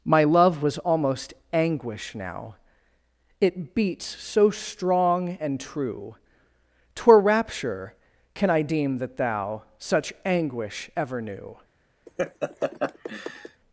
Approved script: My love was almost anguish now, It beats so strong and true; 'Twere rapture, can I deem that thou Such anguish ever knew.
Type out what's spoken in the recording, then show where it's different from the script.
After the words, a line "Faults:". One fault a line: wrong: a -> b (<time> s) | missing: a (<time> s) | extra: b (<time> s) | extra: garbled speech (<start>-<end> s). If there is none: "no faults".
My love was almost anguish now, It beats so strong and true; 'Twere rapture, can I deem that thou Such anguish ever knew.
Faults:
no faults